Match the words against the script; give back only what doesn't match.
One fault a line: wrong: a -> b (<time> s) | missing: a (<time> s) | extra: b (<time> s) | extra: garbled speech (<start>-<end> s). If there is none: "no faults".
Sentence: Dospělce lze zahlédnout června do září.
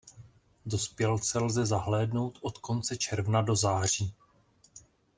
extra: od konce (2.4 s)